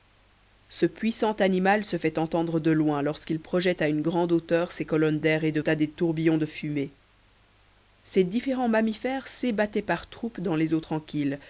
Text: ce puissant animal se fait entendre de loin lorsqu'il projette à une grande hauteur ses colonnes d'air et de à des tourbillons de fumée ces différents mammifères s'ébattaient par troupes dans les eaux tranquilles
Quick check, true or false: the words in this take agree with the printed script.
true